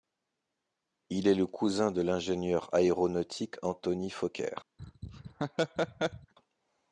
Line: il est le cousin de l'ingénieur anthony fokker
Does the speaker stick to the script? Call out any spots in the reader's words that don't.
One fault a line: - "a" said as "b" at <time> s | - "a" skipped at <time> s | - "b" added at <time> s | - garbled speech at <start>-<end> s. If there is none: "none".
- "aéronautique" added at 2.7 s